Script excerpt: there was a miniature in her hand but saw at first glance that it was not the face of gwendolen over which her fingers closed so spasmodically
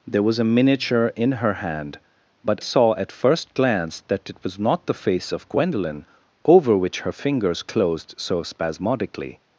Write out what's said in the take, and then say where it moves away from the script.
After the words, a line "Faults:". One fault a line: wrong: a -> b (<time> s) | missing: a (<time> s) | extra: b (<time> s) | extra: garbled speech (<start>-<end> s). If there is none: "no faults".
there was a miniature in her hand but saw at first glance that it was not the face of gwendolen over which her fingers closed so spasmodically
Faults:
no faults